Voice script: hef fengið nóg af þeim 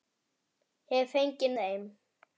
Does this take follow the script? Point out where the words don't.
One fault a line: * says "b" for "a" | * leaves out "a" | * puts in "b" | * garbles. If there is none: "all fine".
* leaves out "nóg af"